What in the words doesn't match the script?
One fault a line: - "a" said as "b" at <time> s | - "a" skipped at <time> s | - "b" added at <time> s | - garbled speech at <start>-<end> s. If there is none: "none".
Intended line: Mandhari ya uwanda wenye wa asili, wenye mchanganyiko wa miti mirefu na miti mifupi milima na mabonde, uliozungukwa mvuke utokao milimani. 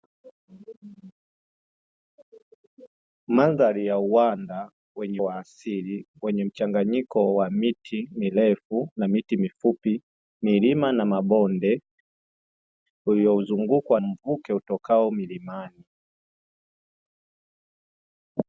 none